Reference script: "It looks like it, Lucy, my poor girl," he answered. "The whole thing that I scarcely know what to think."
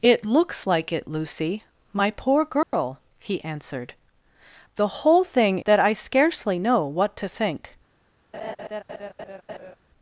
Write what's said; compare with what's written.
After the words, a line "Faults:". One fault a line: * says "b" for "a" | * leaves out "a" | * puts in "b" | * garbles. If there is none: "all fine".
"It looks like it, Lucy, my poor girl," he answered. "The whole thing that I scarcely know what to think."
Faults:
all fine